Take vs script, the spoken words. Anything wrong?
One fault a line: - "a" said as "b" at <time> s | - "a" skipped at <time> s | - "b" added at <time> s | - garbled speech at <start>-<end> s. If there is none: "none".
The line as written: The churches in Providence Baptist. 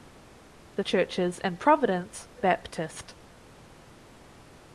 none